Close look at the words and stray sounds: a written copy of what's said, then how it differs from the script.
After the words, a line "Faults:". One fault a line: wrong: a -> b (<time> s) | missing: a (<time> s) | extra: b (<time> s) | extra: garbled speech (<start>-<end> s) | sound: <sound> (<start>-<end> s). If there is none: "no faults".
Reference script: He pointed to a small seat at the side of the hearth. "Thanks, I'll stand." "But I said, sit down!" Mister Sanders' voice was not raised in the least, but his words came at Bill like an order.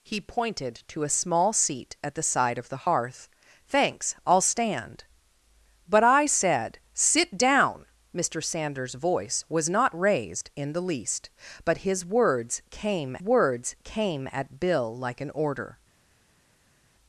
He pointed to a small seat at the side of the hearth. "Thanks, I'll stand." "But I said, sit down!" Mister Sanders' voice was not raised in the least, but his words came words came at Bill like an order.
Faults:
extra: words came (13.2 s)